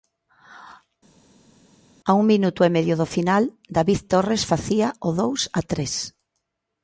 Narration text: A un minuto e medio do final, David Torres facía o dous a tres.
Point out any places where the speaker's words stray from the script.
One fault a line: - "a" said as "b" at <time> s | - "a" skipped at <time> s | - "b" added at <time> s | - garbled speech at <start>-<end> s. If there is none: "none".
none